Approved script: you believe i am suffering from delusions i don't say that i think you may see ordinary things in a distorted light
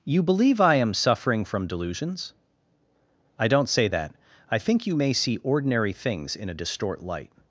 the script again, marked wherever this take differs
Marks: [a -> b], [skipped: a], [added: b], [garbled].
you believe i am suffering from delusions i don't say that i think you may see ordinary things in a [distorted -> distort] light